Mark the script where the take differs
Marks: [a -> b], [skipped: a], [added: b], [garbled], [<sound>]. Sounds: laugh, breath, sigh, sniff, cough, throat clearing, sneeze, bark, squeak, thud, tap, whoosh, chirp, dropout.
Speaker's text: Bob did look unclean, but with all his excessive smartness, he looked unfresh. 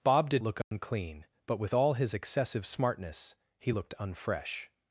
Bob did look unclean, [dropout] but with all his excessive smartness, he looked unfresh.